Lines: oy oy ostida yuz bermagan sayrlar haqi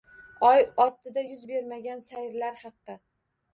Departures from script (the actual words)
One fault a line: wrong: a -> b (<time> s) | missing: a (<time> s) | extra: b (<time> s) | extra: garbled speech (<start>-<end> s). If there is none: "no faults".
missing: oy (0.6 s)